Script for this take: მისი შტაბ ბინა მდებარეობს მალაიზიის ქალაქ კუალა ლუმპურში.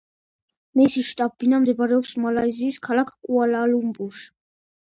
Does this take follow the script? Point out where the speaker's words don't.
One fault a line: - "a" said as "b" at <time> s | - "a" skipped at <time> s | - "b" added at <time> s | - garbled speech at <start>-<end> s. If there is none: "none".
none